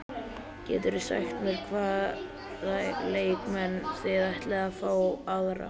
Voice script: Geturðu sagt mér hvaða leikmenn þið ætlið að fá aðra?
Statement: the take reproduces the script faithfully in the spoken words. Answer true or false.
true